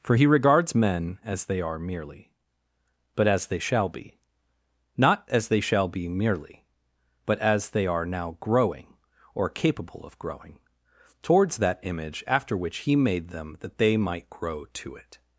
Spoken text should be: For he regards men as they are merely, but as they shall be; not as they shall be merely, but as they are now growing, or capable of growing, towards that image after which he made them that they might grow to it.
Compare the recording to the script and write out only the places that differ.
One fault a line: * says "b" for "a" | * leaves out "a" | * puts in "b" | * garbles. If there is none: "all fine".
all fine